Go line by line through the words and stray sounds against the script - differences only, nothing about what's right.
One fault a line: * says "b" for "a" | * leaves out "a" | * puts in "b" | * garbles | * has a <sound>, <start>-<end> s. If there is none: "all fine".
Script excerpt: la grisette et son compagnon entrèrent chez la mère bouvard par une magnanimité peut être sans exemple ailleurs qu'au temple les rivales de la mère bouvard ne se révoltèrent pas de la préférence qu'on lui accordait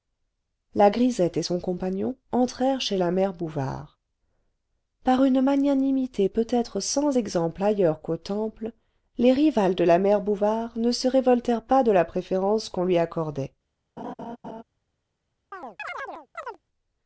* has a laugh, 14.0-14.6 s
* has a chirp, 15.5-16.6 s